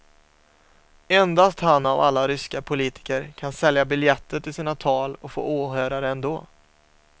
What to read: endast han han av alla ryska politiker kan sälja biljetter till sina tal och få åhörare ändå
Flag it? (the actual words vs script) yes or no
yes